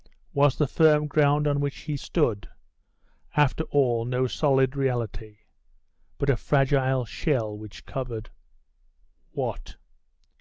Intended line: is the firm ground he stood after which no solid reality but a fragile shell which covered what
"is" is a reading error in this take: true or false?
true